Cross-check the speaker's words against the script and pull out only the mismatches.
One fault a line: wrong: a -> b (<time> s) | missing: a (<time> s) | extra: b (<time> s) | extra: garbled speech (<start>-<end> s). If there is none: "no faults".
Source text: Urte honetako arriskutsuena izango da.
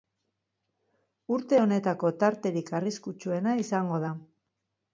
extra: tarterik (2.2 s)